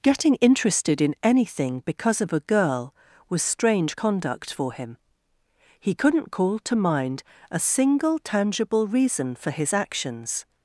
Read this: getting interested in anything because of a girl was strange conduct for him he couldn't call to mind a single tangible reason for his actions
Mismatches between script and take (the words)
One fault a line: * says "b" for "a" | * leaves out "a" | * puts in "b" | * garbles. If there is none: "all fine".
all fine